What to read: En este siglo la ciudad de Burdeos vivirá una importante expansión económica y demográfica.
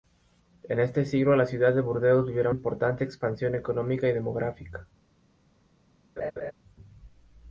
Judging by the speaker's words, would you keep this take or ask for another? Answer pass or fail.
fail